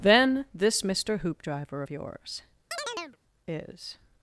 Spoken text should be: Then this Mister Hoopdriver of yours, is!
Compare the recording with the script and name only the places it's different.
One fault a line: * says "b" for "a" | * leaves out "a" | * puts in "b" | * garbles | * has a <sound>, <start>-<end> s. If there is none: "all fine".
* has a chirp, 2.7-3.2 s